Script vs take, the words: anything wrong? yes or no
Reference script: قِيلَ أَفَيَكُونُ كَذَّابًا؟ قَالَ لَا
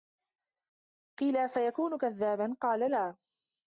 no